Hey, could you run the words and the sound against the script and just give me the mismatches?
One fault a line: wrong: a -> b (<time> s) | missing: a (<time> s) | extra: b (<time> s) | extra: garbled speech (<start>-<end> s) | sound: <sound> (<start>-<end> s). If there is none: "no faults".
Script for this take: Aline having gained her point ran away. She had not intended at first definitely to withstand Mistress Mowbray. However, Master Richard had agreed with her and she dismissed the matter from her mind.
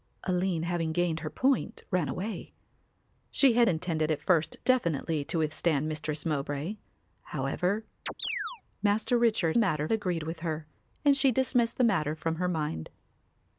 missing: not (3.7 s)
sound: chirp (8.1-8.6 s)
wrong: had -> matter (9.6 s)